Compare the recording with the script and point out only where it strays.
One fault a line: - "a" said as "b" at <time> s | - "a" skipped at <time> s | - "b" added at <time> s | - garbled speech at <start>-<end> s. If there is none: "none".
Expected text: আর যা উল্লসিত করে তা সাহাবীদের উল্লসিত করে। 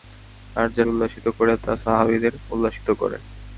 none